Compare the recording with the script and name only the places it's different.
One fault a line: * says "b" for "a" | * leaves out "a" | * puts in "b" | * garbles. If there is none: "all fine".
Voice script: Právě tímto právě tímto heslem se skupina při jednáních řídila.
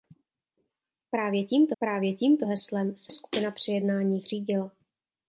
all fine